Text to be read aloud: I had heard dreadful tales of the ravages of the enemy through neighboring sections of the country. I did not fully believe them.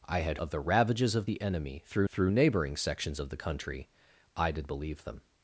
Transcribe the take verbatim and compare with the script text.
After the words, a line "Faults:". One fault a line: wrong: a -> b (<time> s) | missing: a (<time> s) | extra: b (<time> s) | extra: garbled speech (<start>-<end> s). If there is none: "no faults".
I had of the ravages of the enemy through through neighboring sections of the country. I did believe them.
Faults:
missing: heard dreadful tales (0.4 s)
extra: through (2.1 s)
missing: not fully (4.7 s)